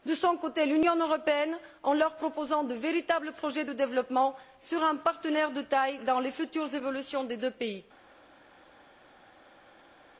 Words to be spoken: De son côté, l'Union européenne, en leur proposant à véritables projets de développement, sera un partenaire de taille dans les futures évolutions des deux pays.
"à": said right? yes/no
no